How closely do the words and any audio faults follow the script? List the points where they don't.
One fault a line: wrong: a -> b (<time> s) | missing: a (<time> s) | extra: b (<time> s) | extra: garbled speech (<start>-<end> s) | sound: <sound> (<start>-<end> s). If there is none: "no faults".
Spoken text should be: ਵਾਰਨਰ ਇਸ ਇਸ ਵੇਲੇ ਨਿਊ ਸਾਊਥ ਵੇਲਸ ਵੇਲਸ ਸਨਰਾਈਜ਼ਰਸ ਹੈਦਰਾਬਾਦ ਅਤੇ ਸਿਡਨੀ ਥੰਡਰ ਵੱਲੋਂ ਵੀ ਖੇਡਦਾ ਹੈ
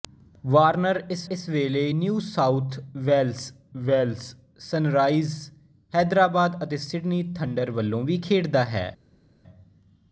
no faults